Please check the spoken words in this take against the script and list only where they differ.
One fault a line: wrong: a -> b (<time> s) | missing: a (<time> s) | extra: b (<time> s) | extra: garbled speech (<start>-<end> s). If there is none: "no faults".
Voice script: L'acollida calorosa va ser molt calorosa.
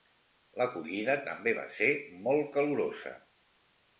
wrong: calorosa -> també (1.3 s)